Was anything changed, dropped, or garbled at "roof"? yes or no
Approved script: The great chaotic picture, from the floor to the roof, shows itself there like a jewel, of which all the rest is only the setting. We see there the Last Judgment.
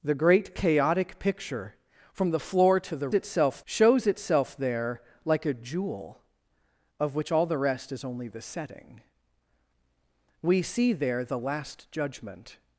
yes